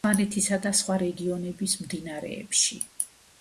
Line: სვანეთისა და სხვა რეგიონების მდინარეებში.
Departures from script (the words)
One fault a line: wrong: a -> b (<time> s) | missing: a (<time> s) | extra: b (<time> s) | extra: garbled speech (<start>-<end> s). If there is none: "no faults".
no faults